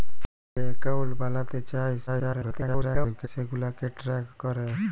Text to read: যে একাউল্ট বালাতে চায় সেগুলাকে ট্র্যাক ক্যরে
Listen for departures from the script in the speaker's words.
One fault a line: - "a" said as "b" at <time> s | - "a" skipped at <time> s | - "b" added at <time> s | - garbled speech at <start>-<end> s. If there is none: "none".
- garbled speech at 2.1-3.3 s